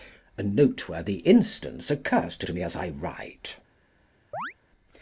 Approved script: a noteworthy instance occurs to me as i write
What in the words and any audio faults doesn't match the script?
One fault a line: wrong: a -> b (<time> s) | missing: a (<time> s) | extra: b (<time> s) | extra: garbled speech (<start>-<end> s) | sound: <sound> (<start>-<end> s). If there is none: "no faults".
extra: to (2.4 s)
sound: chirp (4.3-4.5 s)